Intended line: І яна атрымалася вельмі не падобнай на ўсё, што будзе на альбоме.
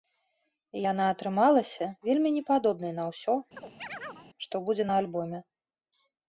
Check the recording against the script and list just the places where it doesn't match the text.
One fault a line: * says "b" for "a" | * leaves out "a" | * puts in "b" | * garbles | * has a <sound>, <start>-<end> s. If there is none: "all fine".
* has a chirp, 3.6-4.3 s